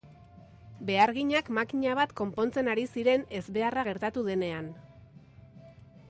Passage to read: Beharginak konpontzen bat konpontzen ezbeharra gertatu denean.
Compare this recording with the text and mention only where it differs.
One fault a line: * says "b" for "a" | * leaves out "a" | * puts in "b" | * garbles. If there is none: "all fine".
* says "makina" for "konpontzen"
* puts in "ari ziren"